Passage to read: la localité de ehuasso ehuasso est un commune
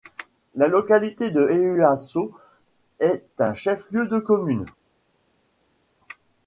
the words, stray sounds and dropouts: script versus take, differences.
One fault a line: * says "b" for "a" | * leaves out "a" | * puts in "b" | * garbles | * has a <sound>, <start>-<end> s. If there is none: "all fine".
* leaves out "ehuasso"
* puts in "chef lieu de"